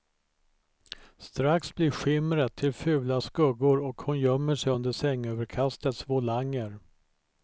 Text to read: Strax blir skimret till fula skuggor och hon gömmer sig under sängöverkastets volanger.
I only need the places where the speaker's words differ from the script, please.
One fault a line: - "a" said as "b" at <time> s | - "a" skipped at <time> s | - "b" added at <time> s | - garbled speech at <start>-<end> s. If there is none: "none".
none